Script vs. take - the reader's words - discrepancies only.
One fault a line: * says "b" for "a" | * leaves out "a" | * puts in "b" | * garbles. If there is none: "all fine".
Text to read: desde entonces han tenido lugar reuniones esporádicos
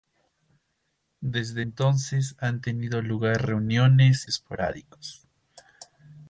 all fine